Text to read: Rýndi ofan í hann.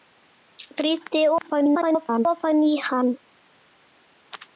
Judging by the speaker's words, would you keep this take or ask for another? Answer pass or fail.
fail